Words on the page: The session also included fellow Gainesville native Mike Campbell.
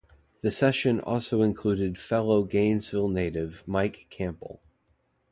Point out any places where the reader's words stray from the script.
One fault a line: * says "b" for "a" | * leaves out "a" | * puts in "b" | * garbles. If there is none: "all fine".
all fine